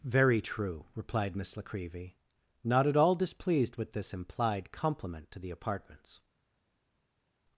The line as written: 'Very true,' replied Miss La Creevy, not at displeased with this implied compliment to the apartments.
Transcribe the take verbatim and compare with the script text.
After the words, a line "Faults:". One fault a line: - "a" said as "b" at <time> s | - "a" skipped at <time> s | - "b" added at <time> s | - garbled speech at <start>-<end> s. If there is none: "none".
'Very true,' replied Miss La Creevy, not at all displeased with this implied compliment to the apartments.
Faults:
- "all" added at 3.0 s